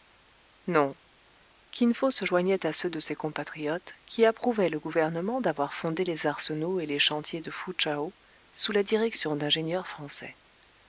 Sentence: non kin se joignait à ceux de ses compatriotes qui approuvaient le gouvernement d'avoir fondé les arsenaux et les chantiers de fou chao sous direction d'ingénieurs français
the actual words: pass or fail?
fail